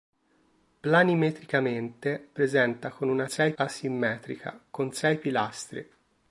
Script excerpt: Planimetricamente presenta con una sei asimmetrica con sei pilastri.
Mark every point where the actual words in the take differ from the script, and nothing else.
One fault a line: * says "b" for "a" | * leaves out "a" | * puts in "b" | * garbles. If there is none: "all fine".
all fine